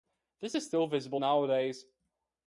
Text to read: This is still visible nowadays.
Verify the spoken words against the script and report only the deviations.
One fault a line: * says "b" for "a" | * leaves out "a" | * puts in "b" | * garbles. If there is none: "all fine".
all fine